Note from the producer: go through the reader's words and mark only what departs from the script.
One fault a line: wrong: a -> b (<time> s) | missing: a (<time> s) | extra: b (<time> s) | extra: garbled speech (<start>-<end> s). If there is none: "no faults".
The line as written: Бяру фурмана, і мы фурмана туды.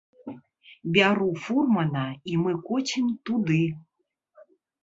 wrong: фурмана -> коцім (2.7 s)